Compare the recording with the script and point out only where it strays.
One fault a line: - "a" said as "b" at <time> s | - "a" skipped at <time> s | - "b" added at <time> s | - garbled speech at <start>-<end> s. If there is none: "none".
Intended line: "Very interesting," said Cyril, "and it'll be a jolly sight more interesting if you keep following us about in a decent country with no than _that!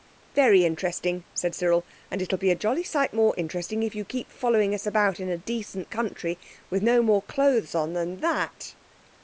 - "more clothes on" added at 7.0 s